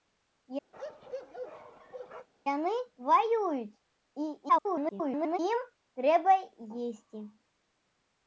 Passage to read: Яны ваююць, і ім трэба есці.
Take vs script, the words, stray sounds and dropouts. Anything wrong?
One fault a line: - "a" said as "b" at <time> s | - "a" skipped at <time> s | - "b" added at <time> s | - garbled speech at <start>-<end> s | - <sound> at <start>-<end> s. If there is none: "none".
- bark at 0.7-2.3 s
- garbled speech at 4.5-5.4 s